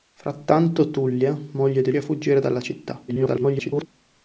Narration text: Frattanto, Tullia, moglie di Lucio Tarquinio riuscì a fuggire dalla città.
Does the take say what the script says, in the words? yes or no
no